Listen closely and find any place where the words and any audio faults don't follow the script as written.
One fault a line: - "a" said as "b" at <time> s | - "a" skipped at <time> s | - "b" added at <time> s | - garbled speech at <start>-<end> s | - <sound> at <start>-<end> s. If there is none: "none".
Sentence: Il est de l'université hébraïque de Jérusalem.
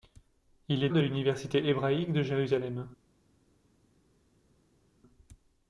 none